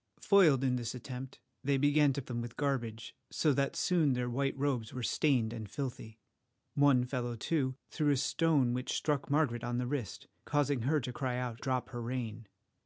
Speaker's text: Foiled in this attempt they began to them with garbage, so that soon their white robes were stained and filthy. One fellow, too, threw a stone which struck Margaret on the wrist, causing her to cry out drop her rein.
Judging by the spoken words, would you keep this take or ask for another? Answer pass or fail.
pass